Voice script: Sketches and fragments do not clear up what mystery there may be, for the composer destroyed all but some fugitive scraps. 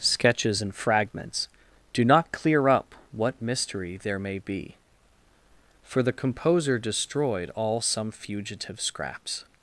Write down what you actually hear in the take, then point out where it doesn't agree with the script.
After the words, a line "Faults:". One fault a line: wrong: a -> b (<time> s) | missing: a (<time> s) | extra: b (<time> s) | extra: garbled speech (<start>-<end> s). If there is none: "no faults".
Sketches and fragments do not clear up what mystery there may be, for the composer destroyed all some fugitive scraps.
Faults:
missing: but (7.8 s)